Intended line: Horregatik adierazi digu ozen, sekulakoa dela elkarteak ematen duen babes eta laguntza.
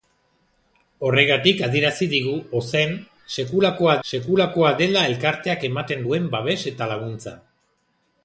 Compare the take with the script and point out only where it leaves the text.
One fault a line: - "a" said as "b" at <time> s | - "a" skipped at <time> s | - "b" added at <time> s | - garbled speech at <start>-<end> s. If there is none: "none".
- "sekulakoa" added at 4.1 s